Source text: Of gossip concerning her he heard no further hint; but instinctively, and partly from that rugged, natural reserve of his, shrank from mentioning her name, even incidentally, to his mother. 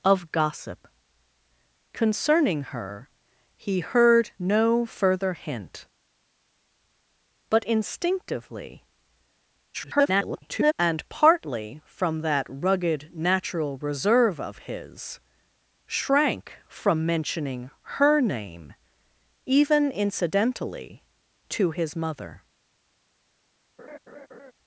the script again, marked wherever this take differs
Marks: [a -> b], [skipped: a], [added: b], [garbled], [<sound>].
Of gossip concerning her he heard no further hint; but instinctively, [garbled] and partly from that rugged, natural reserve of his, shrank from mentioning her name, even incidentally, to his mother. [laugh]